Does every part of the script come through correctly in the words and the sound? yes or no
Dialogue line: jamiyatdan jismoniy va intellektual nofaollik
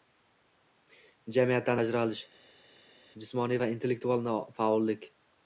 no